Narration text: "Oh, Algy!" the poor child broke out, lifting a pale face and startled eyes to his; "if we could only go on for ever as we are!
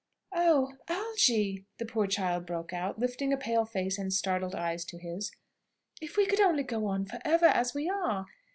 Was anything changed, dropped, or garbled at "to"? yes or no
no